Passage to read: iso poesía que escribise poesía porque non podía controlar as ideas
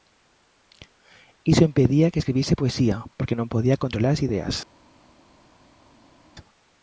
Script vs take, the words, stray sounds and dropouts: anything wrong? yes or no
yes